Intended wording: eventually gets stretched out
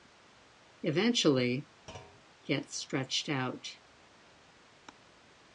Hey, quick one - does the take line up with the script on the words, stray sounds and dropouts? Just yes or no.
no